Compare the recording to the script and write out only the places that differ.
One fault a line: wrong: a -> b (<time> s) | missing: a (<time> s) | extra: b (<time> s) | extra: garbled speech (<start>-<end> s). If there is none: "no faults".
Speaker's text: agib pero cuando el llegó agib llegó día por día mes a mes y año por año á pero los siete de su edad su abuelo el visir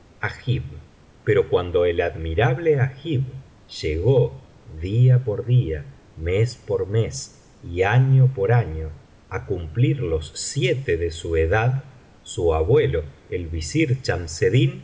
wrong: llegó -> admirable (2.0 s)
wrong: a -> por (6.6 s)
wrong: pero -> cumplir (9.5 s)